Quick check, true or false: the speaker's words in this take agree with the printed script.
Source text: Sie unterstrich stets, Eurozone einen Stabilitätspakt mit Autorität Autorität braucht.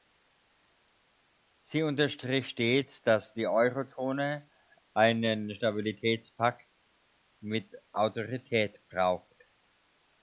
false